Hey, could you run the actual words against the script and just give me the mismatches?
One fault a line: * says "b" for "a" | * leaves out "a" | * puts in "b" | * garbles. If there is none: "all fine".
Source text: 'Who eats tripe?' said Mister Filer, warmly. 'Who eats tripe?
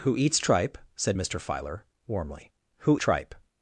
* leaves out "eats"